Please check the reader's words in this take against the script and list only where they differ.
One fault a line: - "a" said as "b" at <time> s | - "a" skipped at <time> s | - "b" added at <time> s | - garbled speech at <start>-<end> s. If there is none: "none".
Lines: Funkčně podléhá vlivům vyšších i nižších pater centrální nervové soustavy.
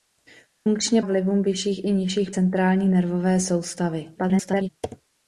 - "podléhá" skipped at 1.0 s
- "pater" skipped at 2.3 s
- garbled speech at 4.2-4.7 s